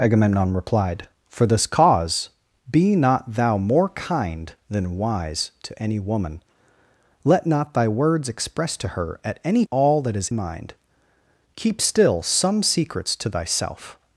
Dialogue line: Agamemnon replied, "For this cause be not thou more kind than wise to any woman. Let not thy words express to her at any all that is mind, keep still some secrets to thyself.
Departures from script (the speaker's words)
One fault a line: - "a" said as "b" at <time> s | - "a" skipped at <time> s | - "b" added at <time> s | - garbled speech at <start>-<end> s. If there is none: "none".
none